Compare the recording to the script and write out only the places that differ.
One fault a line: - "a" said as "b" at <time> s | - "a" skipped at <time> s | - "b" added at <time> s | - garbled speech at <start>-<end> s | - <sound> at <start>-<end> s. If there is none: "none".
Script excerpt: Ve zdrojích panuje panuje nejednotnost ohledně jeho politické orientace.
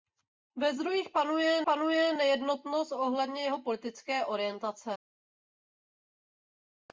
none